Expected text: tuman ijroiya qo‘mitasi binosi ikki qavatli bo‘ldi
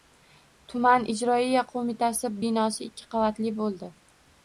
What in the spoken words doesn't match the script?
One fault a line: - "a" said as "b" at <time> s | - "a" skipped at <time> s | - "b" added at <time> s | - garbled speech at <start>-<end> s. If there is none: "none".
none